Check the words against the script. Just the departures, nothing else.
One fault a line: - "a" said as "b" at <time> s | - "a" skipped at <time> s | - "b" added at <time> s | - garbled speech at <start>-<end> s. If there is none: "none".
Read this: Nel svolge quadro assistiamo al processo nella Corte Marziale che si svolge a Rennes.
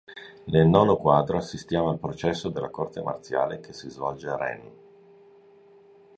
- "svolge" said as "nono" at 0.7 s
- "nella" said as "della" at 2.5 s